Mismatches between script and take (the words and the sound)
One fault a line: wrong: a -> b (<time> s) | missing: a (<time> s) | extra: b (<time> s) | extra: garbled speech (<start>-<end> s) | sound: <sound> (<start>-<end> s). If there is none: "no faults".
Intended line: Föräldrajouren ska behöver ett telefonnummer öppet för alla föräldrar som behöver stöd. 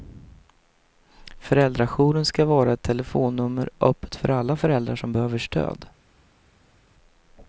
wrong: behöver -> vara (2.5 s)